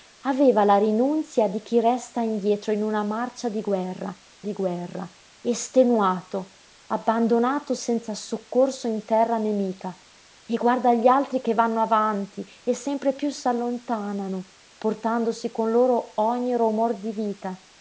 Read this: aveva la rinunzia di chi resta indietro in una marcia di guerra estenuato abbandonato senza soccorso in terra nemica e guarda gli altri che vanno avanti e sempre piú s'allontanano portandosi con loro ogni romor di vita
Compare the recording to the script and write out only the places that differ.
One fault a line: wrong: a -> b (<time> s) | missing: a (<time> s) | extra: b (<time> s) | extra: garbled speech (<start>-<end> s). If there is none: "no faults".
extra: di guerra (4.4 s)